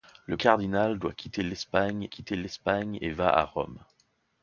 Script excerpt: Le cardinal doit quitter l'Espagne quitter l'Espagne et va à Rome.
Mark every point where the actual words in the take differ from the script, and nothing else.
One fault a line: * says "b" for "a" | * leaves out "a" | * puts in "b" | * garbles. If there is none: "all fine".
all fine